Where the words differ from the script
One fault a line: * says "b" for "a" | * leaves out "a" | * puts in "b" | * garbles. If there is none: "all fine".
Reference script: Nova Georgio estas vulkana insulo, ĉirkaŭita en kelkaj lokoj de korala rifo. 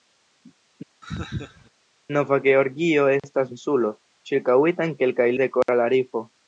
* leaves out "vulkana"
* leaves out "lokoj"